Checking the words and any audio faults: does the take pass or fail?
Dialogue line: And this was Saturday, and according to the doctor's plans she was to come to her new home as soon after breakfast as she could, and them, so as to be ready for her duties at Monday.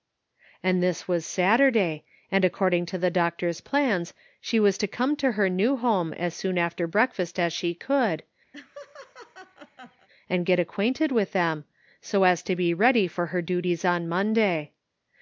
fail